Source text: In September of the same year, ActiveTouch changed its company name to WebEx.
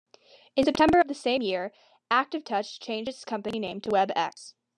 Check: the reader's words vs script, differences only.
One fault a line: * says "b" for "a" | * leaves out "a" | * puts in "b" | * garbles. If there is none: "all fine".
all fine